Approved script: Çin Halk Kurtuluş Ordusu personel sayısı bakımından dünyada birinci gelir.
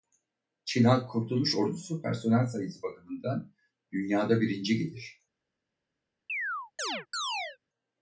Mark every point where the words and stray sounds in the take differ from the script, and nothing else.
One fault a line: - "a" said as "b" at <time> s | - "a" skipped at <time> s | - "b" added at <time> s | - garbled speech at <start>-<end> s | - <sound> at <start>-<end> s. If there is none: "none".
- chirp at 6.3-7.6 s